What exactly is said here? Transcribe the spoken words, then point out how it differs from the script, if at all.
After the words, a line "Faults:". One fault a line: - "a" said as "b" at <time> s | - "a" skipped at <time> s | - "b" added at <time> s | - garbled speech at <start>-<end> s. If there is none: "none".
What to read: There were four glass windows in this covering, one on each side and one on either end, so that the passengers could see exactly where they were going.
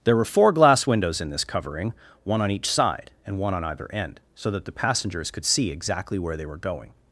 There were four glass windows in this covering, one on each side and one on either end, so that the passengers could see exactly where they were going.
Faults:
none